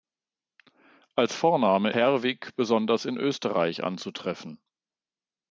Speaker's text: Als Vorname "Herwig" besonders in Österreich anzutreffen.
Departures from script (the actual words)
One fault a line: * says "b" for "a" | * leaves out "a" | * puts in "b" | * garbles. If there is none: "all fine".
all fine